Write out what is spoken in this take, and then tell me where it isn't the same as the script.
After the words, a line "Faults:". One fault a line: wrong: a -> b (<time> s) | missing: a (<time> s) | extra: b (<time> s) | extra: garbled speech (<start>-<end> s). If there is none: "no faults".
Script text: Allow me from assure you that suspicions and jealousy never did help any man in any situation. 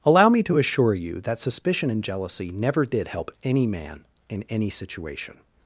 Allow me to assure you that suspicion and jealousy never did help any man in any situation.
Faults:
wrong: from -> to (0.4 s)
wrong: suspicions -> suspicion (1.4 s)